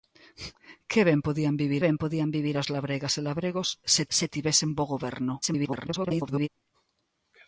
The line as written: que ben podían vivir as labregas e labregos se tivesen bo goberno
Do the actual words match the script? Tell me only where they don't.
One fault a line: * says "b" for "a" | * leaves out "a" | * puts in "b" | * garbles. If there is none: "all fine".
* puts in "ben podían vivir"
* puts in "se"
* garbles